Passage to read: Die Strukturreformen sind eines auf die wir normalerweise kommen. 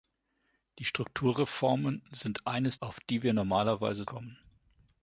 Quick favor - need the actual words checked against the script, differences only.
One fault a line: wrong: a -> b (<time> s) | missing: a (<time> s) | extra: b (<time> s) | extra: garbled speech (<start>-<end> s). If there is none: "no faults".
no faults